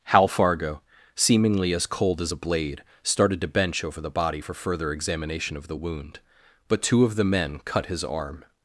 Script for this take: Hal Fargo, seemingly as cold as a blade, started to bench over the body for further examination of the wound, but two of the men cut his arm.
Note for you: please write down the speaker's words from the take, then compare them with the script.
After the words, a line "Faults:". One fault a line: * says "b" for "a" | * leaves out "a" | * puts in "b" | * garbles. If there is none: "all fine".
Hal Fargo, seemingly as cold as a blade, started to bench over the body for further examination of the wound, but two of the men cut his arm.
Faults:
all fine